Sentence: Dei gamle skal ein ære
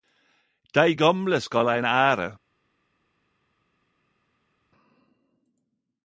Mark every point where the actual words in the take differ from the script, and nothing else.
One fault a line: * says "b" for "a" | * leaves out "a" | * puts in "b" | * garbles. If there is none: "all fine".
all fine